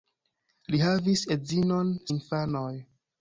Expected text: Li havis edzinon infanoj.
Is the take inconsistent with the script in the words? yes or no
no